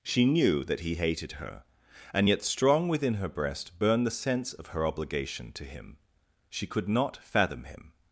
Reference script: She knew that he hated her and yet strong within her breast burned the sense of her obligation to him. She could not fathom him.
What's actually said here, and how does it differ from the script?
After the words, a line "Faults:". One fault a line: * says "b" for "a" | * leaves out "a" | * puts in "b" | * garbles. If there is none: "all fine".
She knew that he hated her and yet strong within her breast burned the sense of her obligation to him. She could not fathom him.
Faults:
all fine